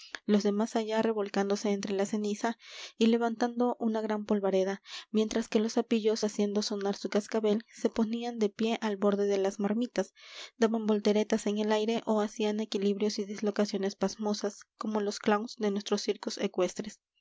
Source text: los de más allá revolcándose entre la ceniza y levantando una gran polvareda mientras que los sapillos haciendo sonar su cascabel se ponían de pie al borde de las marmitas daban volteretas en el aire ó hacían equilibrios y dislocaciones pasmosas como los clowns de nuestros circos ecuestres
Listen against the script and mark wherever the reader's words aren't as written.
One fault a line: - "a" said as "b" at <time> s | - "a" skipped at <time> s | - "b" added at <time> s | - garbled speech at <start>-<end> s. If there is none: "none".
none